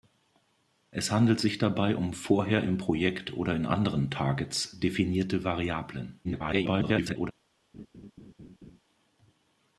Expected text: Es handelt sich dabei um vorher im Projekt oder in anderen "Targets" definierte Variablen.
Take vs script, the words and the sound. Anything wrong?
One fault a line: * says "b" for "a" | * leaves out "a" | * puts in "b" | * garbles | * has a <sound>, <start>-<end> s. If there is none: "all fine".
* garbles
* has a laugh, 7.7-8.8 s